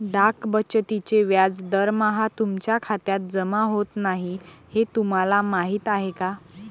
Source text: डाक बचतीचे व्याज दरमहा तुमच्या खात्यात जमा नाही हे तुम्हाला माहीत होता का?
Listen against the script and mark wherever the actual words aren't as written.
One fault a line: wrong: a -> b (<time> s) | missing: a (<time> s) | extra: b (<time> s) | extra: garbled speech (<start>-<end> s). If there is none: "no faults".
extra: होत (3.6 s)
wrong: होता -> आहे (5.9 s)